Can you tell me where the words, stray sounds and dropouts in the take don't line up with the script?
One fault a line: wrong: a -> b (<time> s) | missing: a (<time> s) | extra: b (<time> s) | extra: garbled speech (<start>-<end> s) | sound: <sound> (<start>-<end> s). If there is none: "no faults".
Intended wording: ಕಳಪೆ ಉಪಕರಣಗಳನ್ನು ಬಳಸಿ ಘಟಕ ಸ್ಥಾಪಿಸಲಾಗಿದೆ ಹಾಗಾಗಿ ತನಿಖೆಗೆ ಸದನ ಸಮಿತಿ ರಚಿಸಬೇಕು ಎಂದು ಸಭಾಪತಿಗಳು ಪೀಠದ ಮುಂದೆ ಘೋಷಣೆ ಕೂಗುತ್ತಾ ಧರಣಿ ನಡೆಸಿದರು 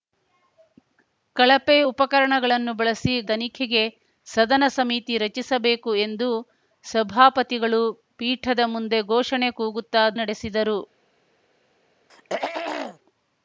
missing: ಘಟಕ ಸ್ಥಾಪಿಸಲಾಗಿದೆ ಹಾಗಾಗಿ (3.1 s)
missing: ಧರಣಿ (10.0 s)
sound: throat clearing (12.1-13.0 s)